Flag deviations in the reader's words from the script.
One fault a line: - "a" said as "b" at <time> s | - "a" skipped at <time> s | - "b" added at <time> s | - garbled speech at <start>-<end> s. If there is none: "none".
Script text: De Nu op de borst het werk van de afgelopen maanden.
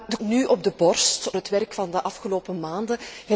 none